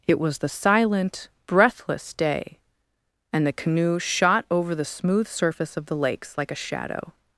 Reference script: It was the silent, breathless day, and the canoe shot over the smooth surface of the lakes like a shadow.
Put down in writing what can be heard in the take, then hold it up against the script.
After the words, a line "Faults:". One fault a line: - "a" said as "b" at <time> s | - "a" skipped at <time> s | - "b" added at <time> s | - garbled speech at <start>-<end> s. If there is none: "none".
It was the silent, breathless day, and the canoe shot over the smooth surface of the lakes like a shadow.
Faults:
none